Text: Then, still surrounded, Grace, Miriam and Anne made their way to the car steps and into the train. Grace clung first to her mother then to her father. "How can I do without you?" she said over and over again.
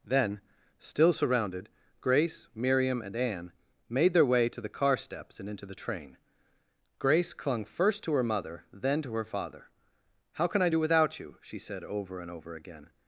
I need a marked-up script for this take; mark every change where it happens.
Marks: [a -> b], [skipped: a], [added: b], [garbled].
Then, still surrounded, Grace, Miriam and Anne made their way to the car steps and into the train. Grace clung first to her mother then to her father. "How can I do without you?" she said over and over again.